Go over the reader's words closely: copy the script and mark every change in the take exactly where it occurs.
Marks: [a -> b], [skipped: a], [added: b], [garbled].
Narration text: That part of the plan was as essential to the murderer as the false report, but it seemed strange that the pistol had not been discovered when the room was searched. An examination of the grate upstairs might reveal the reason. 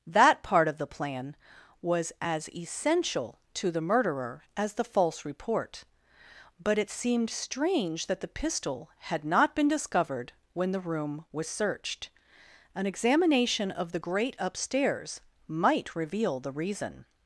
That part of the plan was as essential to the murderer as the false report, but it seemed strange that the pistol had not been discovered when the room was searched. An examination of the grate upstairs might reveal the reason.